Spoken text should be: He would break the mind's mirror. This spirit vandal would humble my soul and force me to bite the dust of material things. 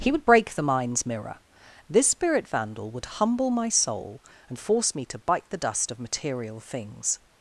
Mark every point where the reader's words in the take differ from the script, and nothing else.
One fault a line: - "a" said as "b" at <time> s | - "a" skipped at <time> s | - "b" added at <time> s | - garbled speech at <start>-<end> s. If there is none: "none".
none